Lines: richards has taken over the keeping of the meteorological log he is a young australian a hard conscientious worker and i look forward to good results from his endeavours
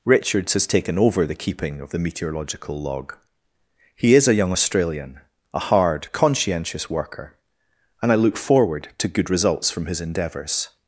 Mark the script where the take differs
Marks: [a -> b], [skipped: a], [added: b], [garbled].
richards has taken over the keeping of the meteorological log he is a young australian a hard conscientious worker and i look forward to good results from his endeavours